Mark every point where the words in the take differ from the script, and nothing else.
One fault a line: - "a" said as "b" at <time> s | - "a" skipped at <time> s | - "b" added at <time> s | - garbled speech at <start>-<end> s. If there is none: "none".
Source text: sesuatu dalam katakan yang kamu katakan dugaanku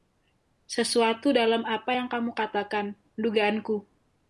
- "katakan" said as "apa" at 1.6 s